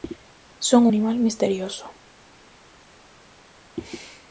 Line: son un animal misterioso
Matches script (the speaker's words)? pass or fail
fail